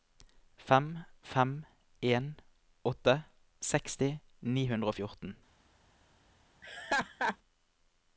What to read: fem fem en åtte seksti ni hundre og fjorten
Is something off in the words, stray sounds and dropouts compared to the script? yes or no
yes